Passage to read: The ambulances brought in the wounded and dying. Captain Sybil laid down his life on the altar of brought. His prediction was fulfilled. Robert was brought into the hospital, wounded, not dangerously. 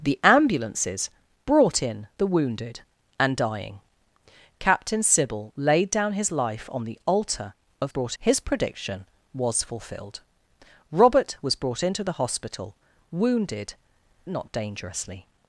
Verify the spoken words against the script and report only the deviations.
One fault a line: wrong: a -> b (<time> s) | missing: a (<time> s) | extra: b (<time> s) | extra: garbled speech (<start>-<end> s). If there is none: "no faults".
no faults